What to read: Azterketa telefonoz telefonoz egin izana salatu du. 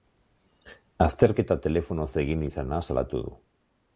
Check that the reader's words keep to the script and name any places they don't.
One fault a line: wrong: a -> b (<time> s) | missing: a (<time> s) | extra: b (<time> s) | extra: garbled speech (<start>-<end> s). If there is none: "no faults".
missing: telefonoz (2.1 s)